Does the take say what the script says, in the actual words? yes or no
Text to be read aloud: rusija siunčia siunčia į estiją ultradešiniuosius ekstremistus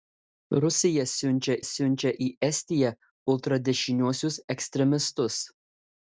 yes